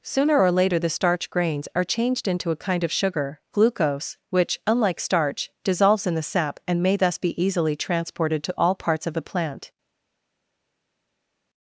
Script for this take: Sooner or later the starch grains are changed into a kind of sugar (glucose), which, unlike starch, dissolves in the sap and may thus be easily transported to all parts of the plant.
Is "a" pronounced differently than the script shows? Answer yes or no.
no